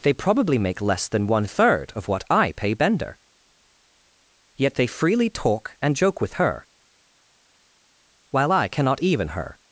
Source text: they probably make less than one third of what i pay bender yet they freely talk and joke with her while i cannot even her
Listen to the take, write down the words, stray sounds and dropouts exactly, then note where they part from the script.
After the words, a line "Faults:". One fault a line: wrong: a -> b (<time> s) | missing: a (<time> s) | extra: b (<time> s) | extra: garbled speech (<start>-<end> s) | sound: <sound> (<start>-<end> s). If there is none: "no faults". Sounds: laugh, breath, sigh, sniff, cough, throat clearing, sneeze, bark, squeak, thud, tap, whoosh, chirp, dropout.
they probably make less than one third of what i pay bender yet they freely talk and joke with her while i cannot even her
Faults:
no faults